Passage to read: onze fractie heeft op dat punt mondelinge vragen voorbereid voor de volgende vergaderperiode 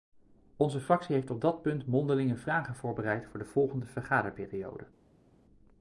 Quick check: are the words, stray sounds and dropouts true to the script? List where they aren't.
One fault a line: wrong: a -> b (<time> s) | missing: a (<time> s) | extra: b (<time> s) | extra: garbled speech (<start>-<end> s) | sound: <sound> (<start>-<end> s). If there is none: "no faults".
no faults